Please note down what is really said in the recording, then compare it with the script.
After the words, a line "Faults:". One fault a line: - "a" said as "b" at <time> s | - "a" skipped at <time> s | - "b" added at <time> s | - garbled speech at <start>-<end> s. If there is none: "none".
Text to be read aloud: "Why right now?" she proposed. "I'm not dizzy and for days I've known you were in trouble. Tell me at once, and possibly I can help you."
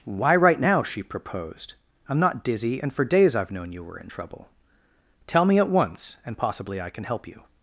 "Why right now?" she proposed. "I'm not dizzy and for days I've known you were in trouble. Tell me at once, and possibly I can help you."
Faults:
none